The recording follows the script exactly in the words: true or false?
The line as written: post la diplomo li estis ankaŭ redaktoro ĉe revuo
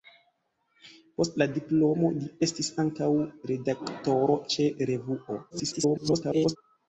false